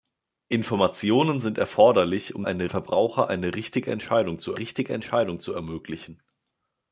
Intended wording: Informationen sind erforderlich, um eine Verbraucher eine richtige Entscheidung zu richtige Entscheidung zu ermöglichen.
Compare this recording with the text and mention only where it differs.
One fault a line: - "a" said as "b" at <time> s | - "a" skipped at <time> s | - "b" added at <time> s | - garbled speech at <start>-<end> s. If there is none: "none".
none